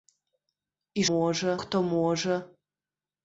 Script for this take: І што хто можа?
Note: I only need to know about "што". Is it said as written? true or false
false